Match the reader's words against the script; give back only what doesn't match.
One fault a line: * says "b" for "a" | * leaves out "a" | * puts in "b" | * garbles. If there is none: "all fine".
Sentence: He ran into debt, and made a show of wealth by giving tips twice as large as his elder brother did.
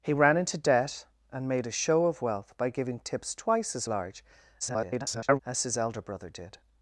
* garbles